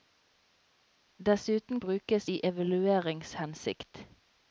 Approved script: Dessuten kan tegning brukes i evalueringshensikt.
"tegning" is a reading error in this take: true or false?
true